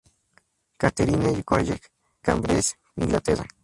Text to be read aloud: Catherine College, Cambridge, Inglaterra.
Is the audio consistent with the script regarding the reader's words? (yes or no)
yes